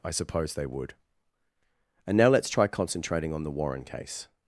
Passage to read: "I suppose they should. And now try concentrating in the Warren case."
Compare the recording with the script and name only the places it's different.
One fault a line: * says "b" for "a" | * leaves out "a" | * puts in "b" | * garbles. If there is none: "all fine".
* says "would" for "should"
* puts in "let's"
* says "on" for "in"